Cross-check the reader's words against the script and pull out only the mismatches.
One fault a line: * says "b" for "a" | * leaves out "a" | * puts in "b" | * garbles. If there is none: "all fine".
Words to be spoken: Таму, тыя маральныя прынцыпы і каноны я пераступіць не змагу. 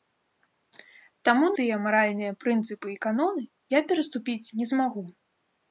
all fine